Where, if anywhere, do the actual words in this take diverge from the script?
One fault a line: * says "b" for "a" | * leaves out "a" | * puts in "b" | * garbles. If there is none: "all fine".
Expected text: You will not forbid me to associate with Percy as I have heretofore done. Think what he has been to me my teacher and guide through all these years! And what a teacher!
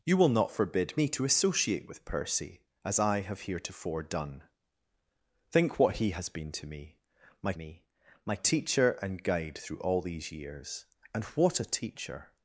* puts in "me my"